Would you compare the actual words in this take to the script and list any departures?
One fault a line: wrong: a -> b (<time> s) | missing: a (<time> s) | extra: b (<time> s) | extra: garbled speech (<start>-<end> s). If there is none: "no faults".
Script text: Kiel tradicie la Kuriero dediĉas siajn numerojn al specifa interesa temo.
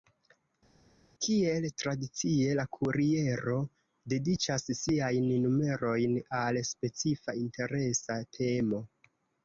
no faults